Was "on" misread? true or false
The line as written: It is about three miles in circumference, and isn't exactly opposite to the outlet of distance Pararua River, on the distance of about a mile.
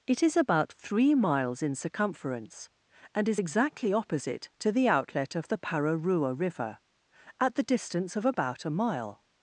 true